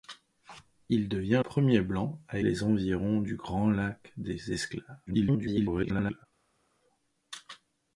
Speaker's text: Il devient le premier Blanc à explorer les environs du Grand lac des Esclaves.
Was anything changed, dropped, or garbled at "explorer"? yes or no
yes